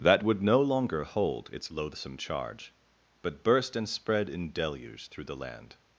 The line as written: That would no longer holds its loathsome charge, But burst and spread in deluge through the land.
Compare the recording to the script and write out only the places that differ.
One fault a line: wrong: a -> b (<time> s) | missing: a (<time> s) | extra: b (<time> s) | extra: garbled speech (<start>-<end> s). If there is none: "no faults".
wrong: holds -> hold (1.0 s)